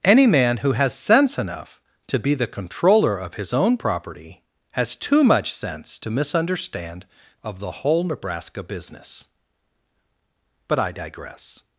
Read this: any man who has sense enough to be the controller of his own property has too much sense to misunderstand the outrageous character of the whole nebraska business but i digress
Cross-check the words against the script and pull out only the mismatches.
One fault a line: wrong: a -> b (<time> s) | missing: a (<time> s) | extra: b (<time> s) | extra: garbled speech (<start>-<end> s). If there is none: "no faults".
missing: the outrageous character (7.0 s)